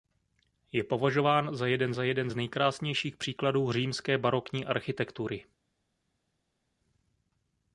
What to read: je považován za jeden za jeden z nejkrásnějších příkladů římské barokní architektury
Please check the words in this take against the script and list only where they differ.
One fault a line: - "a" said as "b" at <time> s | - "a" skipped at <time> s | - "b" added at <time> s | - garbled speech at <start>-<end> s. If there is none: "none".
none